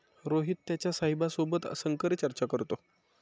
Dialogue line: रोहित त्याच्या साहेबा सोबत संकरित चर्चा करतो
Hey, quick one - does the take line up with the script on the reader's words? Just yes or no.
yes